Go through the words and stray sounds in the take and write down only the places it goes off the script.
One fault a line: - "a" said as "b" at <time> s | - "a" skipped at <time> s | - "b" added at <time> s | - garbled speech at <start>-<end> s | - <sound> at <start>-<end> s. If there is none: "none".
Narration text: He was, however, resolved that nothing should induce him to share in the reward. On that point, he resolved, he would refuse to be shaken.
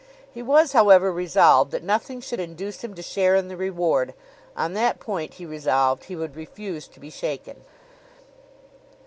none